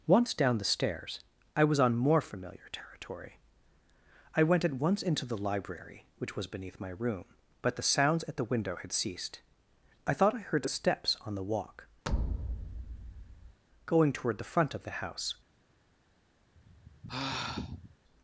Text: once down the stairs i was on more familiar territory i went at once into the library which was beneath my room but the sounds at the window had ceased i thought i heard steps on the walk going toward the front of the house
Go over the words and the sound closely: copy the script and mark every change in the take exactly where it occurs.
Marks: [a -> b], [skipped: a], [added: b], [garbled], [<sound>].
once down the stairs i was on more familiar territory i went at once into the library which was beneath my room but the sounds at the window had ceased i thought i heard steps on the walk [thud] going toward the front of the house [sigh]